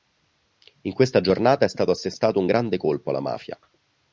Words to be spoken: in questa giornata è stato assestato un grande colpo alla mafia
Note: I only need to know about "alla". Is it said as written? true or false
true